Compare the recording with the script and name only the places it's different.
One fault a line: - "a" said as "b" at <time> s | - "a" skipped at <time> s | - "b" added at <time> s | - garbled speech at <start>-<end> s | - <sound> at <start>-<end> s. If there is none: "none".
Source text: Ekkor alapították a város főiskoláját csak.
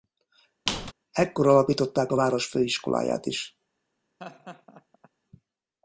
- squeak at 0.7-0.9 s
- "csak" said as "is" at 3.3 s
- laugh at 4.2-5.1 s